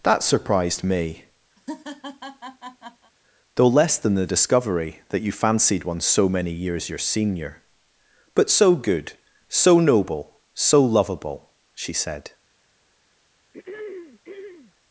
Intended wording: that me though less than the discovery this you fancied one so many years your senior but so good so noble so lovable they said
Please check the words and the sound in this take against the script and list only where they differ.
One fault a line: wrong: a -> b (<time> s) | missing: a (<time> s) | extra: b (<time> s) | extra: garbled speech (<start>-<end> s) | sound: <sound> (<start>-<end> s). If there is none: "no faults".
extra: surprised (0.2 s)
sound: laugh (1.6-3.1 s)
wrong: this -> that (5.1 s)
wrong: they -> she (11.7 s)
sound: throat clearing (13.5-14.7 s)